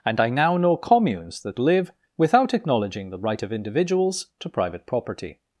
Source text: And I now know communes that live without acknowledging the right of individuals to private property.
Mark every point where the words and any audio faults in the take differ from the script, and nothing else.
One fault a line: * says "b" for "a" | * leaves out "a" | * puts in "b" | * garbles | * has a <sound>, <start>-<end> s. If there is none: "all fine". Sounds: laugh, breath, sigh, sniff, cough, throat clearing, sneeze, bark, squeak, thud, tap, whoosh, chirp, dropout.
all fine